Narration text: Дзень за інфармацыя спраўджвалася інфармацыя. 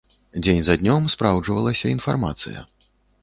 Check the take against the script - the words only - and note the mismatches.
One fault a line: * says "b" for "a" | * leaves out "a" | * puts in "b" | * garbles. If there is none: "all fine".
* says "днём" for "інфармацыя"